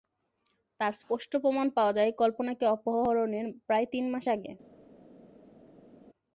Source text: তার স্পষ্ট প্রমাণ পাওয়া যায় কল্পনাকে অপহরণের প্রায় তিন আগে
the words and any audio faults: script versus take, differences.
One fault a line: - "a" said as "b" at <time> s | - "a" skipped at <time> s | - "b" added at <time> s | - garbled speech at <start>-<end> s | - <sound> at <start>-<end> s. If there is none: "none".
- "মাস" added at 4.1 s